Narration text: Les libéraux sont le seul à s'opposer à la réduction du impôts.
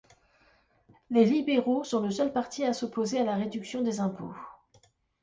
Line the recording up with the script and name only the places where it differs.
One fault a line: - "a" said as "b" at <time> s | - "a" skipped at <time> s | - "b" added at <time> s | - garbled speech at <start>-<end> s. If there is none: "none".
- "parti" added at 2.3 s
- "du" said as "des" at 3.8 s